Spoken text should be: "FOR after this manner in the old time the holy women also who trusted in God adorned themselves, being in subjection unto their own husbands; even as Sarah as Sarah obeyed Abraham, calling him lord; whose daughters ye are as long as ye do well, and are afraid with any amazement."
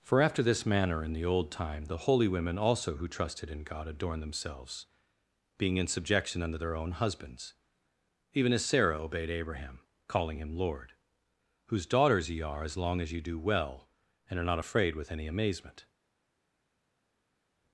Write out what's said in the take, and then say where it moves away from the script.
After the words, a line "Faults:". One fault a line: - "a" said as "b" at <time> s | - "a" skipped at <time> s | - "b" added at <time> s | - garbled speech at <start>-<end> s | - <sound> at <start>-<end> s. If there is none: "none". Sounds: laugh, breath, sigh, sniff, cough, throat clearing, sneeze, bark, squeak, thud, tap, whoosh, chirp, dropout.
"FOR after this manner in the old time the holy women also who trusted in God adorned themselves, being in subjection unto their own husbands; even as Sarah obeyed Abraham, calling him lord; whose daughters ye are as long as ye do well, and are not afraid with any amazement."
Faults:
- "as Sarah" skipped at 9.0 s
- "not" added at 14.4 s